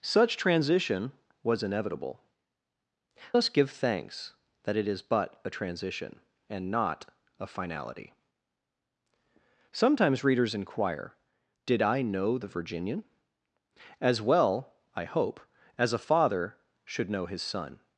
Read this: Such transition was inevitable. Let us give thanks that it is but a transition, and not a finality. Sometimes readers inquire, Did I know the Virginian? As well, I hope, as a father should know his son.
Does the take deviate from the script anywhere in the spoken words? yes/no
yes